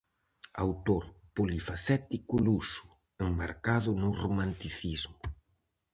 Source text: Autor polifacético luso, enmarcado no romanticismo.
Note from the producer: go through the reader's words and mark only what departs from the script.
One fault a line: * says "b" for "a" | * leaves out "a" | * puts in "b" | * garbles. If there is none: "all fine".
all fine